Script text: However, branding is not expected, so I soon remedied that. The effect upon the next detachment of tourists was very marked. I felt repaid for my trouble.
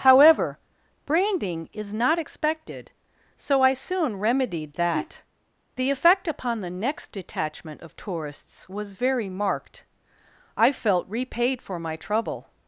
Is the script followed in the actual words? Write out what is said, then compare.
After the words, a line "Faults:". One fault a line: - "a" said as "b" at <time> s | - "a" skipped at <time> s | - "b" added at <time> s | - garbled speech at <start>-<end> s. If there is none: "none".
However, branding is not expected, so I soon remedied that. The effect upon the next detachment of tourists was very marked. I felt repaid for my trouble.
Faults:
none